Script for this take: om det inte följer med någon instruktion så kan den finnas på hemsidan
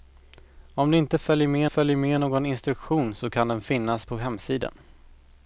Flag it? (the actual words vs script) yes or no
yes